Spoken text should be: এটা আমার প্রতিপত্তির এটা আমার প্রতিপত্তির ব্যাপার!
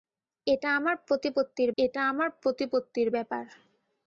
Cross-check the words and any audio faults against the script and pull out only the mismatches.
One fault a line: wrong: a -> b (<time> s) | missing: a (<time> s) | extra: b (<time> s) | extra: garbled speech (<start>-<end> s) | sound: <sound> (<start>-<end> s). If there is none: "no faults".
no faults